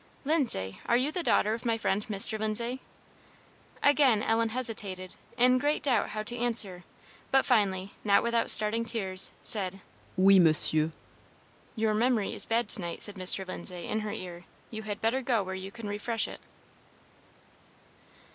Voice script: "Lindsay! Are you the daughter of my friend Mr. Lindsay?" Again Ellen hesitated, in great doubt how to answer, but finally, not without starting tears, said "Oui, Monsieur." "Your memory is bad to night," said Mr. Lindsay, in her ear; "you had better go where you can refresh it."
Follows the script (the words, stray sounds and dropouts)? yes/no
yes